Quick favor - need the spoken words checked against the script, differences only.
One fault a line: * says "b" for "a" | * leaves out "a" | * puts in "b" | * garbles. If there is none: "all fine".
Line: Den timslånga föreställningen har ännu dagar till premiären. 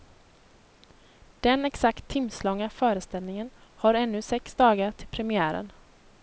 * puts in "exakt"
* puts in "sex"